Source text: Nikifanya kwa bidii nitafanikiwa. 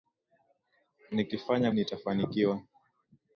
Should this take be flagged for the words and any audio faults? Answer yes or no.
yes